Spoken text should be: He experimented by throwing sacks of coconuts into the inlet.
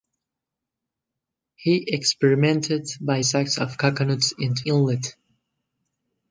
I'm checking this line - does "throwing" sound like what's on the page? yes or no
no